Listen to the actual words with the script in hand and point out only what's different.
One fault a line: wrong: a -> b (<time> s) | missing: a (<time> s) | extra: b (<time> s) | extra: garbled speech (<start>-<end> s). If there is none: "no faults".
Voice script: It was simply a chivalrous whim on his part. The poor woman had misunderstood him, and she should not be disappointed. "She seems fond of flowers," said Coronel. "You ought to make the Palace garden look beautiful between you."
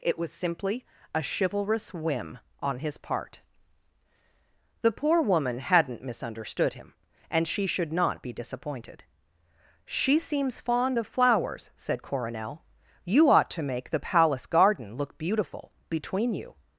wrong: had -> hadn't (5.6 s)